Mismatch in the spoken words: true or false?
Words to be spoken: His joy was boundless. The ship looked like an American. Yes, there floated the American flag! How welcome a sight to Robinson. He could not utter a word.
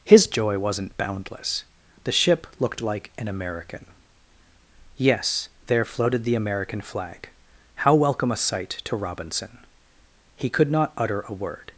true